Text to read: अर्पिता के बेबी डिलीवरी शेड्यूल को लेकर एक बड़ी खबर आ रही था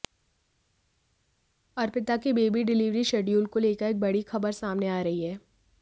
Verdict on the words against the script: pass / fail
fail